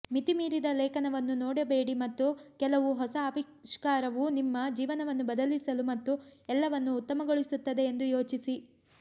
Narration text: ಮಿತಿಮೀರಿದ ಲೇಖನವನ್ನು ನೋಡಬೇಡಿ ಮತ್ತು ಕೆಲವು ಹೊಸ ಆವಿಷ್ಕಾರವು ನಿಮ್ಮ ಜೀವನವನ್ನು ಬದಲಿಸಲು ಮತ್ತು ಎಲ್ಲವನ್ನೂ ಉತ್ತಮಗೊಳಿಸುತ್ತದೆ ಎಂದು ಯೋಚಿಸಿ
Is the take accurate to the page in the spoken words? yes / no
yes